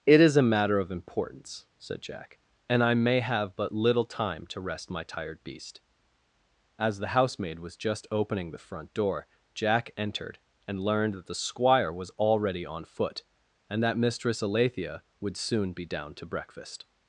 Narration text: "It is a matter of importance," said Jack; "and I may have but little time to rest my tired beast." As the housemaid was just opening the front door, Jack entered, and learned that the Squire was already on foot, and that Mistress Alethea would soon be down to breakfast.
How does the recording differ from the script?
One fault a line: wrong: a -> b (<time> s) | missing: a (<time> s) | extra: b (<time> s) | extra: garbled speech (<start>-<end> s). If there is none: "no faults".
no faults